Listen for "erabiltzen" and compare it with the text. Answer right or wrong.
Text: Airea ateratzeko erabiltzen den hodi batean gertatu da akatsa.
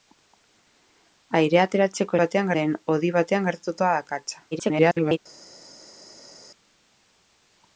wrong